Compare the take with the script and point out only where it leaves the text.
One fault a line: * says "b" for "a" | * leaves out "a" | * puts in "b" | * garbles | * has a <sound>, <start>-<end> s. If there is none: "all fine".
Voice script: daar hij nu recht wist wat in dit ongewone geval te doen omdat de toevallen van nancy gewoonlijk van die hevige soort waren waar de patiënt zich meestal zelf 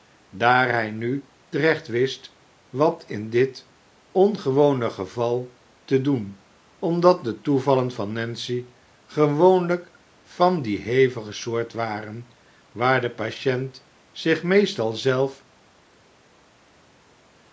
all fine